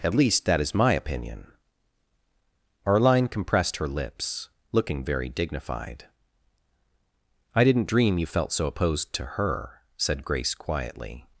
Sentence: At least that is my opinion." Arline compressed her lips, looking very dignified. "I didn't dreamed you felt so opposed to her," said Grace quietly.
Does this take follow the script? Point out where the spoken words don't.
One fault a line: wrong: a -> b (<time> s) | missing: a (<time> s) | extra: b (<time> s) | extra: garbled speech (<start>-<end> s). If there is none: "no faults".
wrong: dreamed -> dream (7.9 s)